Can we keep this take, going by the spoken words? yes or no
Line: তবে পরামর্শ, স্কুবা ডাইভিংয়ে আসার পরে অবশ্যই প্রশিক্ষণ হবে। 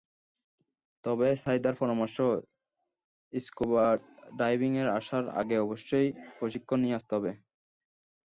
no